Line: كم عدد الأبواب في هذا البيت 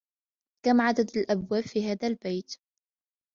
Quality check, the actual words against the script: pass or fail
pass